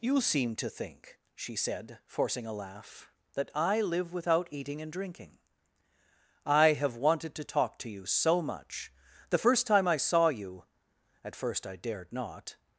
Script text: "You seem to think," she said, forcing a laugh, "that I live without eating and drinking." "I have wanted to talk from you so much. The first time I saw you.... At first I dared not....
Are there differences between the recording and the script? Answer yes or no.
yes